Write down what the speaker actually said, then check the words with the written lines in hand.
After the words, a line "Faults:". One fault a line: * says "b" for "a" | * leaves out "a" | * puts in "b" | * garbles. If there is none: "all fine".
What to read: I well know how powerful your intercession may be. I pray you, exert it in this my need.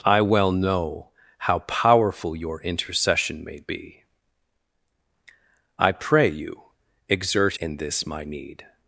I well know how powerful your intercession may be. I pray you, exert in this my need.
Faults:
* leaves out "it"